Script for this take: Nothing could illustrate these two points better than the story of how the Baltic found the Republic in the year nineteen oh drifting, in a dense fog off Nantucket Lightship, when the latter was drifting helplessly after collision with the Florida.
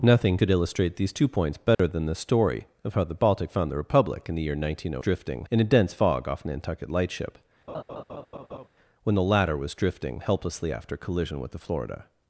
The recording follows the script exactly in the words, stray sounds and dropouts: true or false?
false